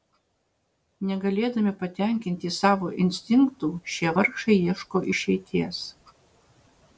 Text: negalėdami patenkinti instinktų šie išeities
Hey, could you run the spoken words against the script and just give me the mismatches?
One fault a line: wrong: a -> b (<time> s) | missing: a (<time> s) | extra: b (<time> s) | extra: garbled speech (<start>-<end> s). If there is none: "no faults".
extra: savo (2.6 s)
extra: vargšai ieško (4.2 s)